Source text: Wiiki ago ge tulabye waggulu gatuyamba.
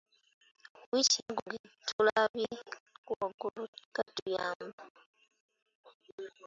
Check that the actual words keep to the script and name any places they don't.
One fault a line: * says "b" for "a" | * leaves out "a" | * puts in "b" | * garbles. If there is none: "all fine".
all fine